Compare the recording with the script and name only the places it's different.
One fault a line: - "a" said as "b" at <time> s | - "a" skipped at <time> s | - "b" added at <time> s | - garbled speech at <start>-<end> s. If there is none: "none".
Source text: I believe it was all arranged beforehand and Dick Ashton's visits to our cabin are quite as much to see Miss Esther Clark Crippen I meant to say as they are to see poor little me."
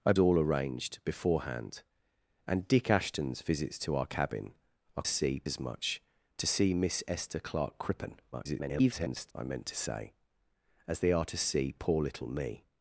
- "believe it was" skipped at 0.1 s
- "quite" said as "see" at 5.1 s
- garbled speech at 8.3-9.3 s